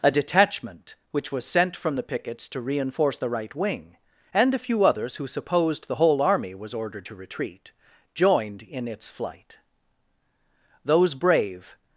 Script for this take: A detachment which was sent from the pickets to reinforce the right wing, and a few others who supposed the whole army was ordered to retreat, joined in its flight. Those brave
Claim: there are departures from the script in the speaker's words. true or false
false